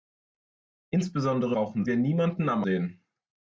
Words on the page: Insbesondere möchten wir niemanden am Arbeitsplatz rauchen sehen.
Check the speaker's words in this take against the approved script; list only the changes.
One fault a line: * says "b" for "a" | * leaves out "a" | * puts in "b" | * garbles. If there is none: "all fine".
* says "rauchen" for "möchten"
* leaves out "Arbeitsplatz rauchen"